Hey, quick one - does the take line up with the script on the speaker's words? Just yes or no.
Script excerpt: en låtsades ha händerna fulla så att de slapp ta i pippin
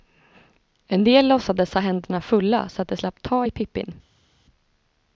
no